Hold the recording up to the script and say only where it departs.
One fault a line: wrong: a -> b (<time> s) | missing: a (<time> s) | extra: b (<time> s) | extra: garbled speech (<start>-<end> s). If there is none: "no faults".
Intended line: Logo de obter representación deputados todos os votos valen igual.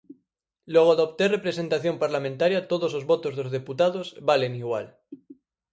wrong: deputados -> parlamentaria (2.0 s)
extra: dos deputados (3.4 s)